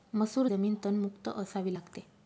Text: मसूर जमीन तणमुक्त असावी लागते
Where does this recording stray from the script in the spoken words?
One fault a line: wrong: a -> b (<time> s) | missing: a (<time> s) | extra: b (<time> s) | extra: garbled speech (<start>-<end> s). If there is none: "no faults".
no faults